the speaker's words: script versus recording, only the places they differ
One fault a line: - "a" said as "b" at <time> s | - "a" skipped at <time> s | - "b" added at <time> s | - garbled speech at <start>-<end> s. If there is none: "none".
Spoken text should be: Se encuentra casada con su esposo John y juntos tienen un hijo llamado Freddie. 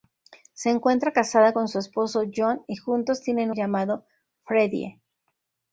- "un hijo" skipped at 3.5 s